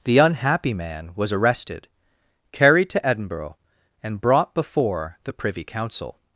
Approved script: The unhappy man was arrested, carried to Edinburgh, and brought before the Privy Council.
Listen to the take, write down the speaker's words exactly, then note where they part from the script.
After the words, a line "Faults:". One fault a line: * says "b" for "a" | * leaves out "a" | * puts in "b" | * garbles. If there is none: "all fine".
The unhappy man was arrested, carried to Edinburgh, and brought before the Privy Council.
Faults:
all fine